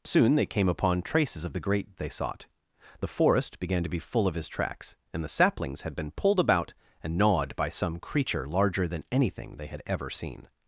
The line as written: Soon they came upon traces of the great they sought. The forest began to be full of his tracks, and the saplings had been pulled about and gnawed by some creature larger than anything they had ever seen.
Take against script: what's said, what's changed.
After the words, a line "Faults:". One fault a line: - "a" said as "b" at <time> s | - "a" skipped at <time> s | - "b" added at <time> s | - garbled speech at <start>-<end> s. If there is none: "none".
Soon they came upon traces of the great they sought. The forest began to be full of his tracks, and the saplings had been pulled about and gnawed by some creature larger than anything they had ever seen.
Faults:
none